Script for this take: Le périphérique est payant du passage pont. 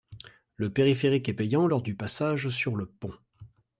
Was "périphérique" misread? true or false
false